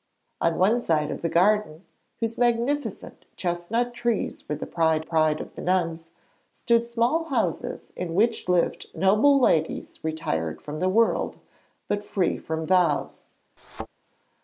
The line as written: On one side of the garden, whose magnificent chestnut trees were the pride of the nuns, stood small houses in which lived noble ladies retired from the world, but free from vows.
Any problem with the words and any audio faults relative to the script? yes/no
yes